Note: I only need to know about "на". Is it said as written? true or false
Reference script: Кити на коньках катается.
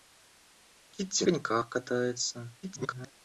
false